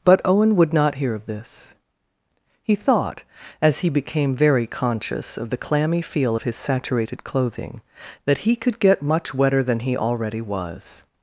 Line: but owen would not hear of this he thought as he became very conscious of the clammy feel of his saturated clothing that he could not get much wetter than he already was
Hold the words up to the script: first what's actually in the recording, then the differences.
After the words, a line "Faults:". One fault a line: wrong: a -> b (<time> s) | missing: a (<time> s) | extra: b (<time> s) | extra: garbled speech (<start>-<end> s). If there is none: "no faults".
but owen would not hear of this he thought as he became very conscious of the clammy feel of his saturated clothing that he could get much wetter than he already was
Faults:
missing: not (8.8 s)